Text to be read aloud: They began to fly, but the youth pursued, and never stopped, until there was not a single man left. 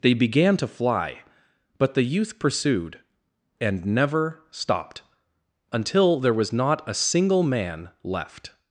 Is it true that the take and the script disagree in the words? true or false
false